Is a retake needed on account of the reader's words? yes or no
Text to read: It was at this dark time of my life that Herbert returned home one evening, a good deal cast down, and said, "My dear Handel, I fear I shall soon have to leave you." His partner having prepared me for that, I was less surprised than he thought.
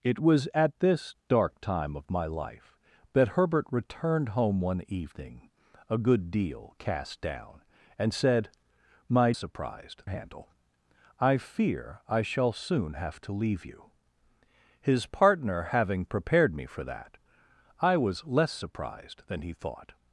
yes